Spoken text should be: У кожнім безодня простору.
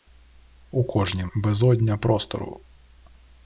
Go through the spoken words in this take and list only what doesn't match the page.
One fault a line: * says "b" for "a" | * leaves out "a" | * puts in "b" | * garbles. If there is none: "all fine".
all fine